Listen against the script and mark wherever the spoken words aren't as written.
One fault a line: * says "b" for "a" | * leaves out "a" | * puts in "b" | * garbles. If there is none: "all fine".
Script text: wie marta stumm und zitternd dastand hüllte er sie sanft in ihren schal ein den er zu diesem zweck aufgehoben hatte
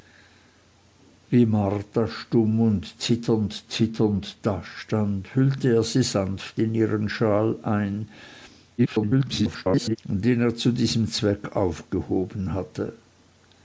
* puts in "zitternd"
* garbles